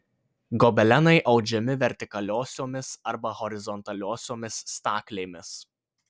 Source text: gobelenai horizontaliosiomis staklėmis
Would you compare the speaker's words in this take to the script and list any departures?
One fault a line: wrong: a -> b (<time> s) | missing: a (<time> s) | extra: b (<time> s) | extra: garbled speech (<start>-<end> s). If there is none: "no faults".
extra: audžiami vertikaliosiomis arba (1.3 s)